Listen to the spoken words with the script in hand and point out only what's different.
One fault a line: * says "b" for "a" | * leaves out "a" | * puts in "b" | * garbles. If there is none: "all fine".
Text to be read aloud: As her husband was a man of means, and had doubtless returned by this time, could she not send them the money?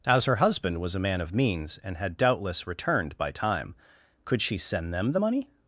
* leaves out "this"
* leaves out "not"